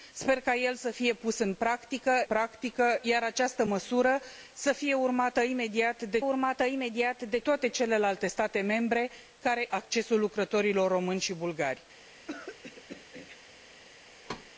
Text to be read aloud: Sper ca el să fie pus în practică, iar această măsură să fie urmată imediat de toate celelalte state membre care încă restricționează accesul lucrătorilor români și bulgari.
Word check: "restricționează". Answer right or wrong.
wrong